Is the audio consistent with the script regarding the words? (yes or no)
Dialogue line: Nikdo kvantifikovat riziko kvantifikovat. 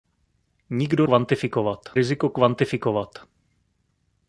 yes